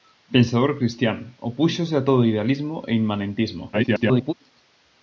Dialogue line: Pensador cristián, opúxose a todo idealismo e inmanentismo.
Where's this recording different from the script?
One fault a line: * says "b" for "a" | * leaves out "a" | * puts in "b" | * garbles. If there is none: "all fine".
* garbles